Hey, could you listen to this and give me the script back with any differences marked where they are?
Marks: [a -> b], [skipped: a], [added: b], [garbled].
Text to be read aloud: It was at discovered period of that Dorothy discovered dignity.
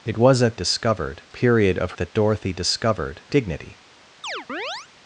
It was at discovered period of that Dorothy discovered dignity.